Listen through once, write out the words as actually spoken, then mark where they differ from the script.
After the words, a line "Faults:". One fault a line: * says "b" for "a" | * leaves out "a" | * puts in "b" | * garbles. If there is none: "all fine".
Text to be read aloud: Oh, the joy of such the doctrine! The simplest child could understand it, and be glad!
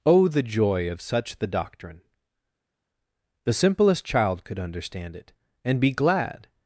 Oh, the joy of such the doctrine! The simplest child could understand it, and be glad!
Faults:
all fine